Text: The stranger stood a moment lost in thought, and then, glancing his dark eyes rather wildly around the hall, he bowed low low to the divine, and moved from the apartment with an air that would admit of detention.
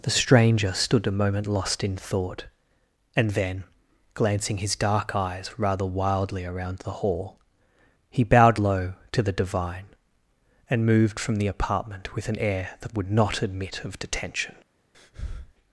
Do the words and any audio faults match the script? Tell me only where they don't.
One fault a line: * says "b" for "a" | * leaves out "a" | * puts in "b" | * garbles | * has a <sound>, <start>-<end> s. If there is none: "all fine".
* leaves out "low"
* puts in "not"
* has a breath, 14.9-15.5 s